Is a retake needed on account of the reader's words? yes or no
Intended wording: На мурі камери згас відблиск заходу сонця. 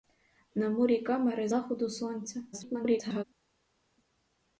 yes